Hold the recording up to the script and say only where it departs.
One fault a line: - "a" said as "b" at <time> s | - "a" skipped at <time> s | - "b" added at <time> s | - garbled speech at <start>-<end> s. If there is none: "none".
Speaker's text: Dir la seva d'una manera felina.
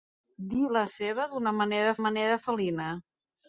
- "manera" added at 2.0 s